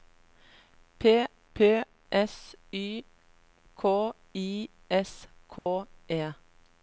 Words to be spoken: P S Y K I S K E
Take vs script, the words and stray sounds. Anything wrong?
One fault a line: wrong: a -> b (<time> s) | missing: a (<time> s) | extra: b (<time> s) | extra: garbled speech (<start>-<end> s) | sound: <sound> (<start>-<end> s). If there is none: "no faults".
extra: p (1.5 s)
sound: dropout (5.6-5.7 s)